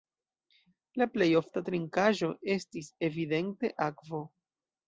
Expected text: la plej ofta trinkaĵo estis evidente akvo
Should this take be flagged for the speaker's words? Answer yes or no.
no